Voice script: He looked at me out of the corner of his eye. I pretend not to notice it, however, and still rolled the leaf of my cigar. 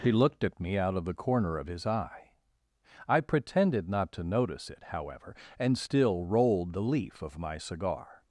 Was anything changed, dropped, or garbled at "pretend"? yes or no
yes